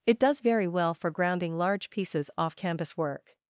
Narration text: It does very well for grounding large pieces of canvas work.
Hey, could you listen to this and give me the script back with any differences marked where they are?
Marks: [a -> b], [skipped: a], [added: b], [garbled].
It does very well for grounding large pieces [of -> off] canvas work.